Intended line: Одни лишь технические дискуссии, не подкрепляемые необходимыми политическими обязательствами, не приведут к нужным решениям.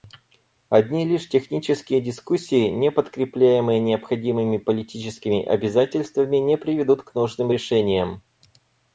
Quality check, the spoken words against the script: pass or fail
pass